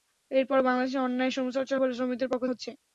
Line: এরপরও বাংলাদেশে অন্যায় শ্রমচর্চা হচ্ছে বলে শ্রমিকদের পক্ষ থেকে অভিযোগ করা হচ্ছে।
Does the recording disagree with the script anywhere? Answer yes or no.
yes